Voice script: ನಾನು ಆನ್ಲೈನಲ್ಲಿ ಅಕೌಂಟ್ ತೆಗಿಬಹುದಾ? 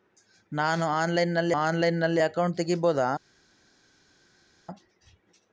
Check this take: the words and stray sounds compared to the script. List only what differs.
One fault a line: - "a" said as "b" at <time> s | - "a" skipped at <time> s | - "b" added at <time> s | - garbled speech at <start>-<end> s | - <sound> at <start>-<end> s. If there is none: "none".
- "ಆನ್ಲೈನಲ್ಲಿ" added at 1.6 s